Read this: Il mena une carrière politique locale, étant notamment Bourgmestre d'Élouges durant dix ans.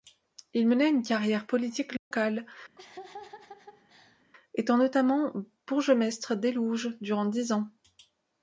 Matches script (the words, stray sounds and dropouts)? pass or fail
fail